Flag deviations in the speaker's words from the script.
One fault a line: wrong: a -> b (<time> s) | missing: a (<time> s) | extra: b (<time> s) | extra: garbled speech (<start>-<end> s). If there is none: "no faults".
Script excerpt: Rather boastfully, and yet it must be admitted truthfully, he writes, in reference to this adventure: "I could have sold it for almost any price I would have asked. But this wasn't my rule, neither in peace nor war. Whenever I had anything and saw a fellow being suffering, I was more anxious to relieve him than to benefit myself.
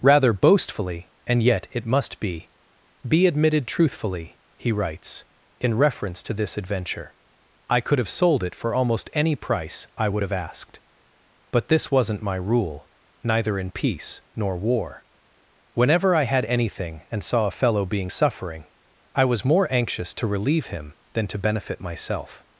extra: be (3.1 s)